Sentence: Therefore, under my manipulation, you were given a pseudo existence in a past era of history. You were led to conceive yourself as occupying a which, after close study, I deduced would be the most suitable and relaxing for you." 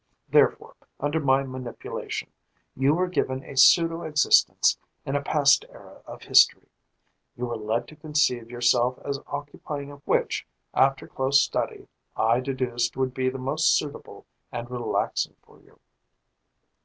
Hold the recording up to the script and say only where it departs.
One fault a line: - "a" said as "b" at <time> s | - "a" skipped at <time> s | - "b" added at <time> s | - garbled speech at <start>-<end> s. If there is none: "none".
none